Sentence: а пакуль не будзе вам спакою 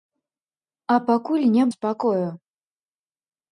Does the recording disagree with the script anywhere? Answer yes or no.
yes